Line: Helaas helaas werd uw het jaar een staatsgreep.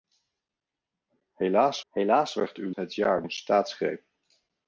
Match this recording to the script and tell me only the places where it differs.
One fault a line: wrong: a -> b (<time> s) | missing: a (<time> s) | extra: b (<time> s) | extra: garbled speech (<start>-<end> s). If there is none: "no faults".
no faults